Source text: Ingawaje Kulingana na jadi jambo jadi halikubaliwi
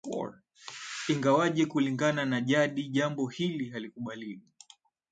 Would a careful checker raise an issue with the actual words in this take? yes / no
yes